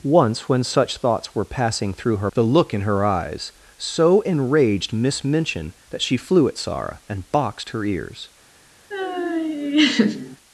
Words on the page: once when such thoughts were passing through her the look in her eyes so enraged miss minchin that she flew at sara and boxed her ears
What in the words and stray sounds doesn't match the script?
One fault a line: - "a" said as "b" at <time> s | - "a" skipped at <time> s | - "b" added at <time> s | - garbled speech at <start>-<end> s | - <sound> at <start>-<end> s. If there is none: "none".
- laugh at 8.9-10.4 s